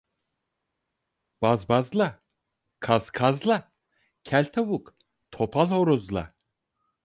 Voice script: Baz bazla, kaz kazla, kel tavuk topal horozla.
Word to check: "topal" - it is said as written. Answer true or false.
true